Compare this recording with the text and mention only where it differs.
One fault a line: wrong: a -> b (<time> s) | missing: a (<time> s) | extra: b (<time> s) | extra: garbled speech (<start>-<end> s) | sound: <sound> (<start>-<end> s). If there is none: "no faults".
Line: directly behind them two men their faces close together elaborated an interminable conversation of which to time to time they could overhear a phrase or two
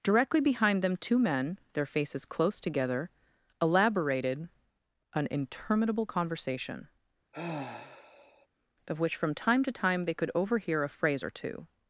sound: sigh (7.3-8.5 s)
wrong: to -> from (9.2 s)